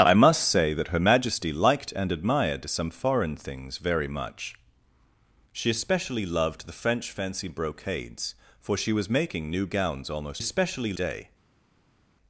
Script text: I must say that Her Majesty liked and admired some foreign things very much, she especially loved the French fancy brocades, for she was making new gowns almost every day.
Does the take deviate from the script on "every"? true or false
true